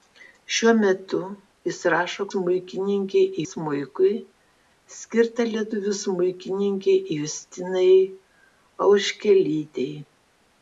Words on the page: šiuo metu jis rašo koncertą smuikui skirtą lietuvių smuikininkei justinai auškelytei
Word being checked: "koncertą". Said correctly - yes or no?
no